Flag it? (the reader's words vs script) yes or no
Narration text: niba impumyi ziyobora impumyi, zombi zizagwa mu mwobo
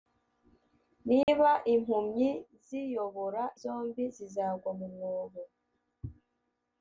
yes